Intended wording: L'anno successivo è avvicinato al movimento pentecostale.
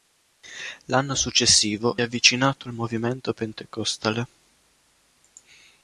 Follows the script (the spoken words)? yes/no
yes